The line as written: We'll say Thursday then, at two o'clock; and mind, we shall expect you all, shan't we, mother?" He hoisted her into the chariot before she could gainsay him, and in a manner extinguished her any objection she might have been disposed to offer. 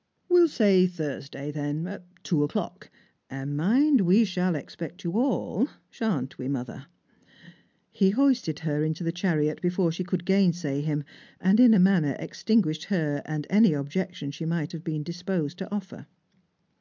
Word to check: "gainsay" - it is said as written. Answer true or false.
true